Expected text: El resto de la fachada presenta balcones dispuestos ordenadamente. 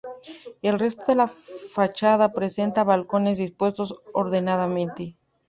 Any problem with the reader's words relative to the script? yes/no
no